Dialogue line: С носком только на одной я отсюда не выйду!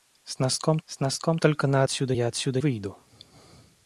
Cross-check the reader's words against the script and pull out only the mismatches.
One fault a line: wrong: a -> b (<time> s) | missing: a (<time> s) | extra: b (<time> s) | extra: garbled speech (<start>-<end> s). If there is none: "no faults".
extra: с носком (0.8 s)
wrong: одной -> отсюда (1.8 s)
missing: не (2.6 s)